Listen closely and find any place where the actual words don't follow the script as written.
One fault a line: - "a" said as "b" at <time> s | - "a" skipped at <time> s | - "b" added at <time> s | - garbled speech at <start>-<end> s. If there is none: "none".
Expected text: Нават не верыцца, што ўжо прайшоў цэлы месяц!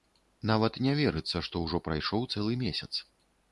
none